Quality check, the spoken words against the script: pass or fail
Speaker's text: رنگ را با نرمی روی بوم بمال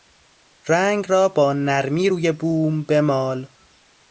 pass